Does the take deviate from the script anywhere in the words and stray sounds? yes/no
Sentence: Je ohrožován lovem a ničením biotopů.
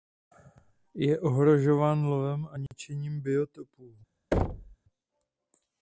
yes